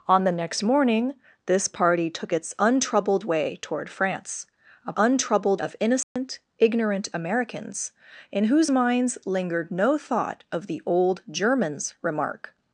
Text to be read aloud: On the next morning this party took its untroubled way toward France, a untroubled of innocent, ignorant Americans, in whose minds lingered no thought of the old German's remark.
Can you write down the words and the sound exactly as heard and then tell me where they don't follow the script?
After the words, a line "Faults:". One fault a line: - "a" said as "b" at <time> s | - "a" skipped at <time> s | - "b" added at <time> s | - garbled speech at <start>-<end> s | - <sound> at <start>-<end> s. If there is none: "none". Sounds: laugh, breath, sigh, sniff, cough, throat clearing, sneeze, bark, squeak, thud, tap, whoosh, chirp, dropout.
On the next morning this party took its untroubled way toward France, a untroubled of innocent, ignorant Americans, in whose minds lingered no thought of the old German's remark.
Faults:
- dropout at 6.0-6.2 s